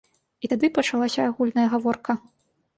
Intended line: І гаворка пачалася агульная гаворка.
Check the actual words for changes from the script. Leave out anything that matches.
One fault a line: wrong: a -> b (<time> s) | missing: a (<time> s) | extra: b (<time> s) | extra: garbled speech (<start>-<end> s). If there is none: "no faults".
wrong: гаворка -> тады (0.5 s)